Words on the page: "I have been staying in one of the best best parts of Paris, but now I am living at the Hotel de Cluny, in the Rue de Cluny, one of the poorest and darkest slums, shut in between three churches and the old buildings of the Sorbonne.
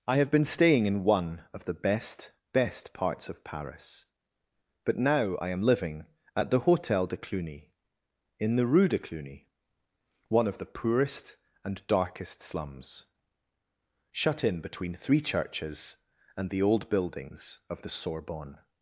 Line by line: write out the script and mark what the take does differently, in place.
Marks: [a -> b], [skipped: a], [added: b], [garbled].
"I have been staying in one of the best best parts of Paris, but now I am living at the Hotel de Cluny, in the Rue de Cluny, one of the poorest and darkest slums, shut in between three churches and the old buildings of the Sorbonne.